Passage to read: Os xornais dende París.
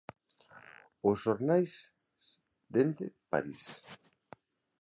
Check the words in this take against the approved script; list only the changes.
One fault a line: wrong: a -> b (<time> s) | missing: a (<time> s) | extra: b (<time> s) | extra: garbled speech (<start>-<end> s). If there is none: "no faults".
no faults